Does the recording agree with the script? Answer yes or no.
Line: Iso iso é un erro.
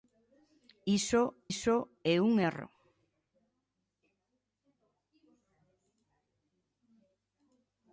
yes